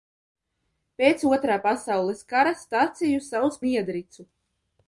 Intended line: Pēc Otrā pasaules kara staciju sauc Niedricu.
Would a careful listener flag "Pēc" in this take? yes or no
no